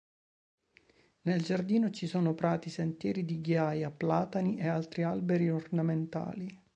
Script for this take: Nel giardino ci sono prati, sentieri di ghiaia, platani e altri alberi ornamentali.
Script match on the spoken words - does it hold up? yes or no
yes